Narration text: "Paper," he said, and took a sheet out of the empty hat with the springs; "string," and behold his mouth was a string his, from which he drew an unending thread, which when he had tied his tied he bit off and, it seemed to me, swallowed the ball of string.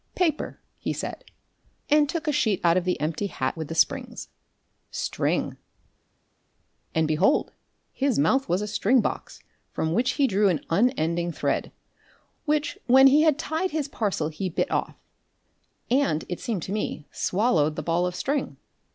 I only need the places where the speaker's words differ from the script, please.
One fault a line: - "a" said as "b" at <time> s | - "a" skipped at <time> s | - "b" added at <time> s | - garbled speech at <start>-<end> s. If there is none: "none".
- "his" said as "box" at 9.0 s
- "tied" said as "parcel" at 13.9 s